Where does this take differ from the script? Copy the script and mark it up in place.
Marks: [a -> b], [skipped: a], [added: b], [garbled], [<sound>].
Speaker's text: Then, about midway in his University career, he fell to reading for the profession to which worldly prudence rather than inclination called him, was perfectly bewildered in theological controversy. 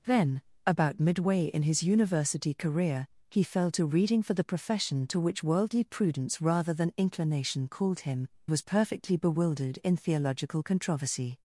Then, about midway in his University career, he fell to reading for the profession to which worldly prudence rather than inclination called him, was perfectly bewildered in theological controversy.